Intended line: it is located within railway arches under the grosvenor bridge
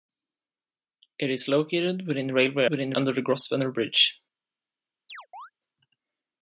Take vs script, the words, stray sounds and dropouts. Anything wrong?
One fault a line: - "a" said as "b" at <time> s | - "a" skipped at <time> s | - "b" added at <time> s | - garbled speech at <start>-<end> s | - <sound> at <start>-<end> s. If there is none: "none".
- "arches" said as "within" at 2.7 s
- chirp at 5.1-5.5 s